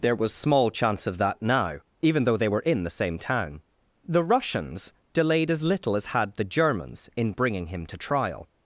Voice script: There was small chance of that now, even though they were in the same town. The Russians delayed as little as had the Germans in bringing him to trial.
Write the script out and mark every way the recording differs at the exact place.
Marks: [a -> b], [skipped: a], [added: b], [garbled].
There was small chance of that now, even though they were in the same town. The Russians delayed as little as had the Germans in bringing him to trial.